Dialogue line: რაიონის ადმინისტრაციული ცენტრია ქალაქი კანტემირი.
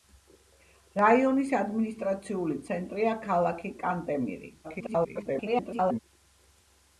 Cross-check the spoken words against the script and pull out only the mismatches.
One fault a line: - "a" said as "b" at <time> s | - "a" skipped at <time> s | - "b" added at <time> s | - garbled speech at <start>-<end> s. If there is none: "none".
- garbled speech at 4.6-6.0 s